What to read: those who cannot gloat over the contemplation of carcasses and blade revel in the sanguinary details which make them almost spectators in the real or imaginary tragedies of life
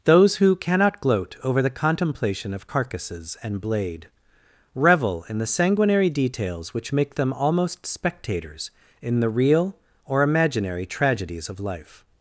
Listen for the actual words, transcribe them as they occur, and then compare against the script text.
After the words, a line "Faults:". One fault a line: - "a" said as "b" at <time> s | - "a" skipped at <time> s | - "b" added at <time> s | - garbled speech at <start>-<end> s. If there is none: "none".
those who cannot gloat over the contemplation of carcasses and blade revel in the sanguinary details which make them almost spectators in the real or imaginary tragedies of life
Faults:
none